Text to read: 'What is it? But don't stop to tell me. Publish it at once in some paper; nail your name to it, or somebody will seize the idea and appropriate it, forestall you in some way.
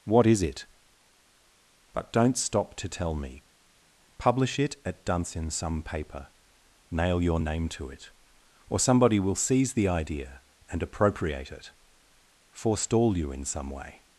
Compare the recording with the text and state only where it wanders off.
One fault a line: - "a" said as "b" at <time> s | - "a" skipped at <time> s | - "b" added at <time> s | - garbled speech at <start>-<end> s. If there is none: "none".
- "once" said as "dunce" at 5.0 s